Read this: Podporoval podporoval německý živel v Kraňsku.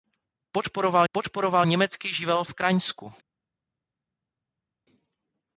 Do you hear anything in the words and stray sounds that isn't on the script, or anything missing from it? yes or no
no